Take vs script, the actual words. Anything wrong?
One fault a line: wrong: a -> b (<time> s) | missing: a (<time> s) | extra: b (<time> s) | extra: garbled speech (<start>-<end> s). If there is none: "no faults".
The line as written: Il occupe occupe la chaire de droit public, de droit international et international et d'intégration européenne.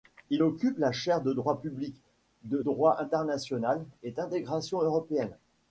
missing: occupe (0.8 s)
missing: international et (4.1 s)